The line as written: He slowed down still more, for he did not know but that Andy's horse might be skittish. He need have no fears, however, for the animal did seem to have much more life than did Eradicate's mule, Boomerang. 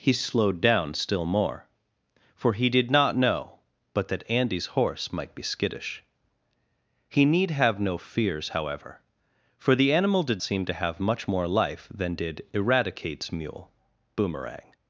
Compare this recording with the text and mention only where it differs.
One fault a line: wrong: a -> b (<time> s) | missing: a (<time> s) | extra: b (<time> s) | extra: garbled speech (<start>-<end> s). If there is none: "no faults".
no faults